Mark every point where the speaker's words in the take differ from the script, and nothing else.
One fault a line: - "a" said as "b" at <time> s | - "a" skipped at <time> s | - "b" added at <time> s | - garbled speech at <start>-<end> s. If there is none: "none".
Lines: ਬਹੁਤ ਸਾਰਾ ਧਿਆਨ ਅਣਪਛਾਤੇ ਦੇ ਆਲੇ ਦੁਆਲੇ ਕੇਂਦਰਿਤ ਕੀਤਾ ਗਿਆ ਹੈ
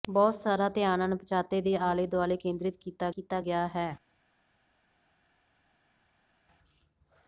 - "ਕੀਤਾ" added at 3.1 s